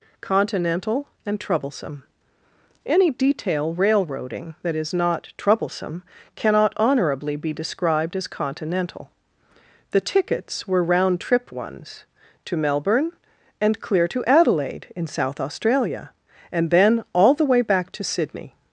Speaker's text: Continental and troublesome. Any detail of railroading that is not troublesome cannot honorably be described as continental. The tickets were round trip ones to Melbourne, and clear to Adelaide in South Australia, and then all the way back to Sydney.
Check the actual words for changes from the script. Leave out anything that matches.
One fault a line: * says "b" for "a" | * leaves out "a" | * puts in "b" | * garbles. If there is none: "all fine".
* leaves out "of"